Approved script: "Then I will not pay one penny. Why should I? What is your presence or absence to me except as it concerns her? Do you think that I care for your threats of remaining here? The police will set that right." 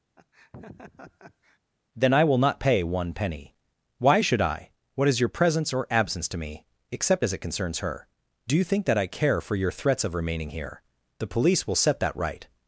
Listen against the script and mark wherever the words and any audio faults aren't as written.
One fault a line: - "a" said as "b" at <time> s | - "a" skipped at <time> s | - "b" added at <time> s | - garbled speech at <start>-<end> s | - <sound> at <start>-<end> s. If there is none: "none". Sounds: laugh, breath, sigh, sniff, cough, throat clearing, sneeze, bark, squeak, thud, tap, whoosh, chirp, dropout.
- laugh at 0.2-1.6 s